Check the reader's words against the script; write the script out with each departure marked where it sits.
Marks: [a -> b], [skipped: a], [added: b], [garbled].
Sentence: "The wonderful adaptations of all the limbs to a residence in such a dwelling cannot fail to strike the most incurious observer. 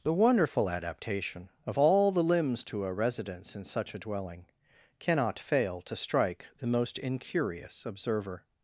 "The wonderful [adaptations -> adaptation] of all the limbs to a residence in such a dwelling cannot fail to strike the most incurious observer.